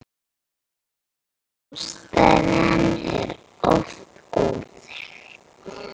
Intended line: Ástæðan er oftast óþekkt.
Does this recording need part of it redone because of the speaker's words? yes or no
no